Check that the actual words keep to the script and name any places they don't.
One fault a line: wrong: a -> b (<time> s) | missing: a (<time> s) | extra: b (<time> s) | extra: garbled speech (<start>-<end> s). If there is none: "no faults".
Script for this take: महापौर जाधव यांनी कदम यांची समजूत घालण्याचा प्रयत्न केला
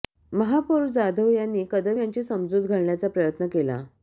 no faults